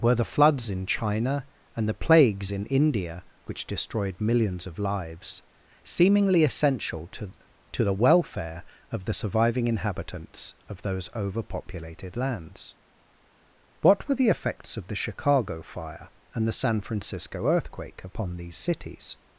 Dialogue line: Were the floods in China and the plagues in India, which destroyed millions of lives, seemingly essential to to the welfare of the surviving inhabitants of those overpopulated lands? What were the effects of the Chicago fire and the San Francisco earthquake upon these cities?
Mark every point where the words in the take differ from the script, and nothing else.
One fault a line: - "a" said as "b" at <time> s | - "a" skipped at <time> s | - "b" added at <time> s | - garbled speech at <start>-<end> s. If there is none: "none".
none